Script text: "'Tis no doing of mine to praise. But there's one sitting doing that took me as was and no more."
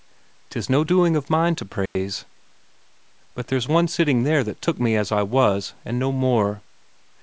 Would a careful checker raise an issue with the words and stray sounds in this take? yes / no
yes